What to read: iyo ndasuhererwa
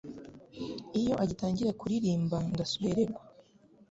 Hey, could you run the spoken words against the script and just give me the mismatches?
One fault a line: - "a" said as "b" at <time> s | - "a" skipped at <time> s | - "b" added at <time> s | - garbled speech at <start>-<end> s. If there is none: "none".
- "agitangira kuririmba" added at 1.2 s